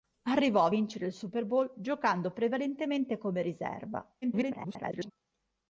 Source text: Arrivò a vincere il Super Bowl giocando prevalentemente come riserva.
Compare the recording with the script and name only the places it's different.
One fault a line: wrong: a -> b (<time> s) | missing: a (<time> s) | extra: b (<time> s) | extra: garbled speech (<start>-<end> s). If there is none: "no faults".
extra: garbled speech (4.2-5.1 s)